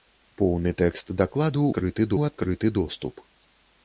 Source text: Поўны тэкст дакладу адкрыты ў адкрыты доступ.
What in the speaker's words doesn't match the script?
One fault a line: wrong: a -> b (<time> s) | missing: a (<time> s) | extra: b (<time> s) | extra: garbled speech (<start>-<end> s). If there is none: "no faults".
no faults